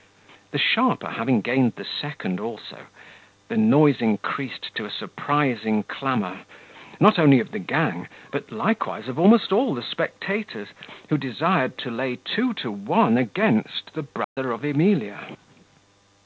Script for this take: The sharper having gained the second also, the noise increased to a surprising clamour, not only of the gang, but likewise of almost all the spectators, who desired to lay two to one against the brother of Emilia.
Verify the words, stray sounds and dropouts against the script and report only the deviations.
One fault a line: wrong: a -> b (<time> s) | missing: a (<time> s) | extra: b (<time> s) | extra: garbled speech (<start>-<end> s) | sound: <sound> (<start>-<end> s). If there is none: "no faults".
sound: dropout (14.2-14.4 s)